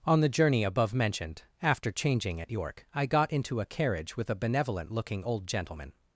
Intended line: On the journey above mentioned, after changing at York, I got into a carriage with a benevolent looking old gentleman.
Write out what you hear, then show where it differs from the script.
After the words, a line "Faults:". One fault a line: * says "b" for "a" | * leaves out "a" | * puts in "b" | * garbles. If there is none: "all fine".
On the journey above mentioned, after changing at York, I got into a carriage with a benevolent looking old gentleman.
Faults:
all fine